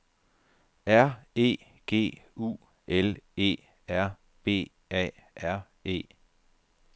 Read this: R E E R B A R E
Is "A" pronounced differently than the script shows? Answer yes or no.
no